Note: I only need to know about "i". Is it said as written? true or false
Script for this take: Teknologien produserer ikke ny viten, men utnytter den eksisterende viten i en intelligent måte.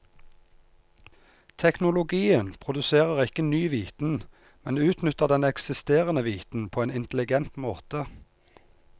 false